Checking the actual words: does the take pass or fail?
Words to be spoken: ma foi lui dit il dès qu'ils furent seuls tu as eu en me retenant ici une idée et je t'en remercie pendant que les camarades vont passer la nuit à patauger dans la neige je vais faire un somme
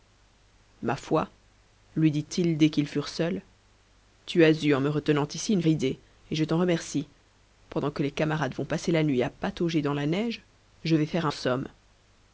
pass